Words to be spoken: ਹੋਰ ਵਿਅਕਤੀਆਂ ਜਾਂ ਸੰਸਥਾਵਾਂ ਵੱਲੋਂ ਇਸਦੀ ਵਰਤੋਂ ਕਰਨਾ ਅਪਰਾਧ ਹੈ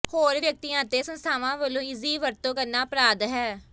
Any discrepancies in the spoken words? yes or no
yes